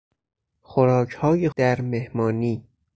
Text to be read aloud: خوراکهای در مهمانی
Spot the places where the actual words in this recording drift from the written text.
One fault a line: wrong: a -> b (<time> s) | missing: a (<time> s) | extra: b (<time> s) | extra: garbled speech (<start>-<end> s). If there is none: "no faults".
no faults